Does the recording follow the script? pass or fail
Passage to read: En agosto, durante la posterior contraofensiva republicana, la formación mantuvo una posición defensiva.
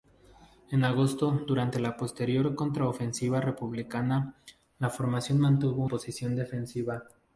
fail